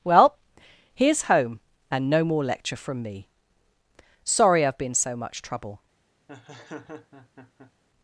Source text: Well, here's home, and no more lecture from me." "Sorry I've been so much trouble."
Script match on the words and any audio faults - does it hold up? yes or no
no